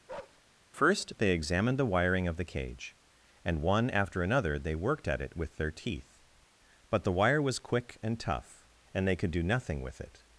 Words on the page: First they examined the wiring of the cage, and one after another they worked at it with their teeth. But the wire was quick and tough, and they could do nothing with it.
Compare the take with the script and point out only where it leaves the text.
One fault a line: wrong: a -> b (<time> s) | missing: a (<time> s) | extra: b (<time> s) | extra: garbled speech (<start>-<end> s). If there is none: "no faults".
no faults